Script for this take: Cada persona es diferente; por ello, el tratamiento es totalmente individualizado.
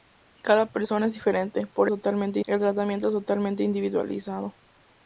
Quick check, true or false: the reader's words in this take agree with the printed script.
false